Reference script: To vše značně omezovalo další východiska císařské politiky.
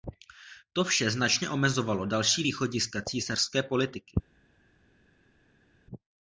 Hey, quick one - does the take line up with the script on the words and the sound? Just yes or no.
yes